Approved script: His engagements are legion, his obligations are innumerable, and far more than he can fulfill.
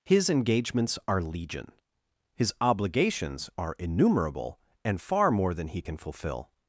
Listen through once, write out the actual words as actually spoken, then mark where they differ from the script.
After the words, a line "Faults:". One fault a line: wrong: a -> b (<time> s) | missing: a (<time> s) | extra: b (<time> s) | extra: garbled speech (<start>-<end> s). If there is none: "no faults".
His engagements are legion, his obligations are innumerable, and far more than he can fulfill.
Faults:
no faults